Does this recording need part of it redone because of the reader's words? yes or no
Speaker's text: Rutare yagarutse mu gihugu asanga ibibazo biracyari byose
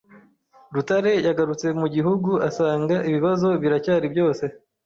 no